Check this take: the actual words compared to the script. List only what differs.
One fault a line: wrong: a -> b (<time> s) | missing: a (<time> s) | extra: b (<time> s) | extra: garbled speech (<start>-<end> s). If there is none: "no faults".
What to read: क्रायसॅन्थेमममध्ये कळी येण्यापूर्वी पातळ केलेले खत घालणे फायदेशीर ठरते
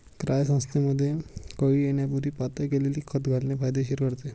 no faults